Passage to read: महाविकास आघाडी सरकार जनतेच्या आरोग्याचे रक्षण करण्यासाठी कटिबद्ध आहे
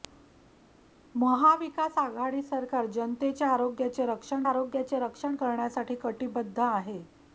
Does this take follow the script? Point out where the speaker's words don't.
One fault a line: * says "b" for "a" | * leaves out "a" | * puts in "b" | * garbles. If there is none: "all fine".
* puts in "आरोग्याचे रक्षण"